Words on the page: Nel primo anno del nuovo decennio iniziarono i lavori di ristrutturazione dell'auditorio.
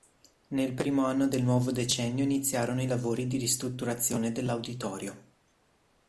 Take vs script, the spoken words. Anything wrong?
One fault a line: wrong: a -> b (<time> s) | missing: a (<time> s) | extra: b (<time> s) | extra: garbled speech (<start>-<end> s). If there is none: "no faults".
no faults